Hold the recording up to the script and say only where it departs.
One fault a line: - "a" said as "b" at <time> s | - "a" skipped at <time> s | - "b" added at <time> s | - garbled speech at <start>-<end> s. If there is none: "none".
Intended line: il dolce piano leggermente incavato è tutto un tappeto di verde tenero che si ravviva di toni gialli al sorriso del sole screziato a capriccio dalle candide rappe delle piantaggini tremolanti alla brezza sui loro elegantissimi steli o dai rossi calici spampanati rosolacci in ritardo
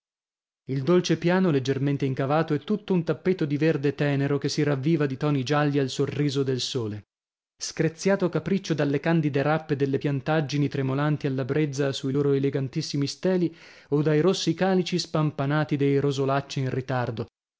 - "dei" added at 15.8 s